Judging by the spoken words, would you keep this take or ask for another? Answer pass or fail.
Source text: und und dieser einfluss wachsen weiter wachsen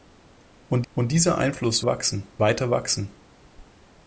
pass